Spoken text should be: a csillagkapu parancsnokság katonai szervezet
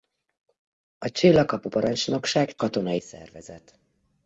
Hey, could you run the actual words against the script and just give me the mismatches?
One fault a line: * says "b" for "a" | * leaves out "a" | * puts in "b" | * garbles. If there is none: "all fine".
all fine